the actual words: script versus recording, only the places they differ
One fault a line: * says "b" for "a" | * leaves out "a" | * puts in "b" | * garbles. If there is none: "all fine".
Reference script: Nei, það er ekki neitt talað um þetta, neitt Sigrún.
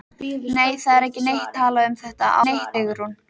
all fine